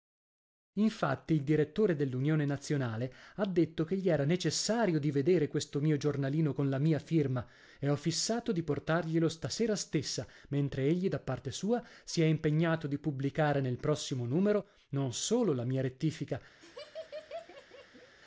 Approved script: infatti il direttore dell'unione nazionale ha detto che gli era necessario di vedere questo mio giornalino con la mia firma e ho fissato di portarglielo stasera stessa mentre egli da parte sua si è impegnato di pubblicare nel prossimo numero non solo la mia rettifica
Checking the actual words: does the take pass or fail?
pass